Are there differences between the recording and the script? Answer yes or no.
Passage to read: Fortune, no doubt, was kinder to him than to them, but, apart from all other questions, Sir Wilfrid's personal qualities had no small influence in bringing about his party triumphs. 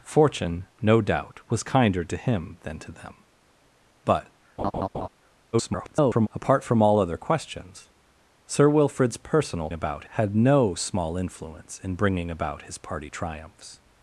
yes